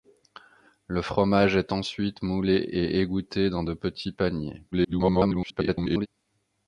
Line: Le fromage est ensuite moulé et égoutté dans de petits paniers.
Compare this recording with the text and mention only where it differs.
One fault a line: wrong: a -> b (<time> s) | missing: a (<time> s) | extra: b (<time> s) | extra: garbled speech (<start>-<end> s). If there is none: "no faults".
extra: garbled speech (4.7-6.1 s)